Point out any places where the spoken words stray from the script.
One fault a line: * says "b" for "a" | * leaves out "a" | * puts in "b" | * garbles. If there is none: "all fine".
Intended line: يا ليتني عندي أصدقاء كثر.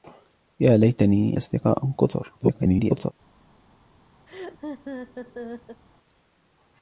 * leaves out "عندي"
* garbles